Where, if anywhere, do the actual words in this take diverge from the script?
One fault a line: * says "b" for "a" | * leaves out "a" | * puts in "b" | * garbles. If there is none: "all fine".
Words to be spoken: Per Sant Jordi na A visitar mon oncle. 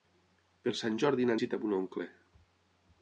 all fine